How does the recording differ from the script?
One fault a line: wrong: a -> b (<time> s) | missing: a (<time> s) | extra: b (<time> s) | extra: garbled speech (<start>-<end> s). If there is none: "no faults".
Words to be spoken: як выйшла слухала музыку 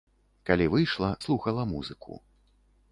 wrong: як -> калі (0.5 s)